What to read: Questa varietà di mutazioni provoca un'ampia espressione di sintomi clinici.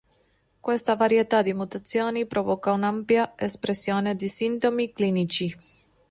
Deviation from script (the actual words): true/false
false